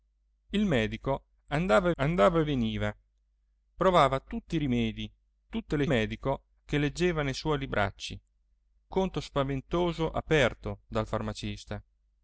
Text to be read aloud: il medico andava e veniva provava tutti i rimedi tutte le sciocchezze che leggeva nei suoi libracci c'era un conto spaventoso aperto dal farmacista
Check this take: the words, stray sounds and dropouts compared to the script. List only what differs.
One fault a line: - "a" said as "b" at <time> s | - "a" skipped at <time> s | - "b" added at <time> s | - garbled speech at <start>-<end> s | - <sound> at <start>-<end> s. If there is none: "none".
- "andava" added at 2.0 s
- "sciocchezze" said as "medico" at 5.8 s
- "c'era un" skipped at 8.2 s